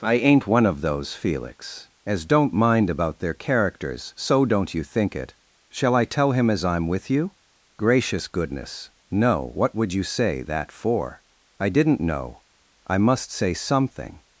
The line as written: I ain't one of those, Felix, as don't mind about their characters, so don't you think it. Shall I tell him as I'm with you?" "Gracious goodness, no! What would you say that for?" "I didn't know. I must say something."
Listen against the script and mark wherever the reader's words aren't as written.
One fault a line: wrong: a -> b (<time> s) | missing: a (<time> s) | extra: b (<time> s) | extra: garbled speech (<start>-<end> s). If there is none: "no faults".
no faults